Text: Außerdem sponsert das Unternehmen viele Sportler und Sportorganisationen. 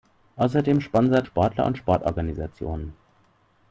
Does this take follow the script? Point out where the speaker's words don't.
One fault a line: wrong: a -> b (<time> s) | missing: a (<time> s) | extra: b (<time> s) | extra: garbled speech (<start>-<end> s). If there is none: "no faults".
missing: das Unternehmen viele (1.3 s)